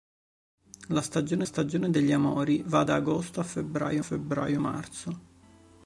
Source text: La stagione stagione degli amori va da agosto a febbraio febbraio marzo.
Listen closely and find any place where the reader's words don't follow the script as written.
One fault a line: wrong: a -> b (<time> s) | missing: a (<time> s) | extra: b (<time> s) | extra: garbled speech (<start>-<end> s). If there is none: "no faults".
no faults